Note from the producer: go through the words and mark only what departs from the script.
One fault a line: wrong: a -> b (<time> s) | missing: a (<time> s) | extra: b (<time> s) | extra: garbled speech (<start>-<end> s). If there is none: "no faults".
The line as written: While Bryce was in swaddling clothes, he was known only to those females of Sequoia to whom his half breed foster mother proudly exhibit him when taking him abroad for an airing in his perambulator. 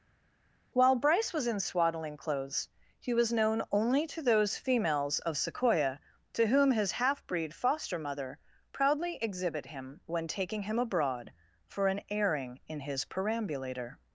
no faults